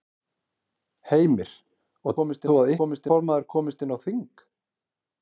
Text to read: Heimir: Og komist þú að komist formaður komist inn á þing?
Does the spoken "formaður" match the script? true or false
true